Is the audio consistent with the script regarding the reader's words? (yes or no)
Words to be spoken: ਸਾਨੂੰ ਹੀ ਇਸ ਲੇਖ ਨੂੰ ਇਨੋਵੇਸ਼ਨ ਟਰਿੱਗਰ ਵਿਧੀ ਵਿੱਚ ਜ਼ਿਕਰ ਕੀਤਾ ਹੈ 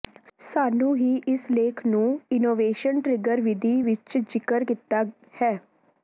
yes